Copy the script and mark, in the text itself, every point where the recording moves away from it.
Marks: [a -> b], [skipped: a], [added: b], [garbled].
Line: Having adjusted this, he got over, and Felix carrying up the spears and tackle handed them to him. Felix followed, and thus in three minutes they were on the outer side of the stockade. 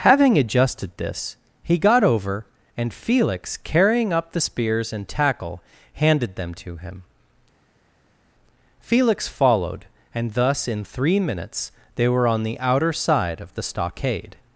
Having adjusted this, he got over, and Felix carrying up the spears and tackle handed them to him. Felix followed, and thus in three minutes they were on the outer side of the stockade.